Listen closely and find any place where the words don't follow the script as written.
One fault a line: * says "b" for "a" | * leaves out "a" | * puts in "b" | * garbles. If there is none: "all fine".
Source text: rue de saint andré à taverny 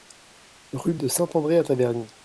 all fine